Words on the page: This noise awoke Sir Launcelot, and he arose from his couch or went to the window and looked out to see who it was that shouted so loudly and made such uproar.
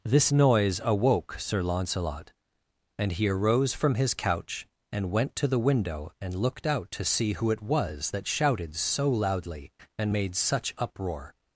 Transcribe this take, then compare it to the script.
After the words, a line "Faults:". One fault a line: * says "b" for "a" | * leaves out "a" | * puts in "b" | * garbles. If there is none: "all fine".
This noise awoke Sir Launcelot, and he arose from his couch and went to the window and looked out to see who it was that shouted so loudly and made such uproar.
Faults:
* says "and" for "or"